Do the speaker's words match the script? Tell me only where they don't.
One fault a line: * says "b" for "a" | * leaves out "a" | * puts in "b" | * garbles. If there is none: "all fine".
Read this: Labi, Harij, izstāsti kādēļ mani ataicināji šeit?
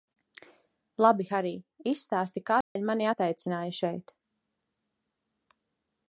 all fine